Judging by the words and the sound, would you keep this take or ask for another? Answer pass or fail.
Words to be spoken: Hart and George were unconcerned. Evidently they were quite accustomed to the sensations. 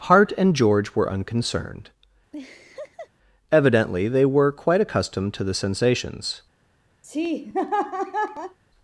fail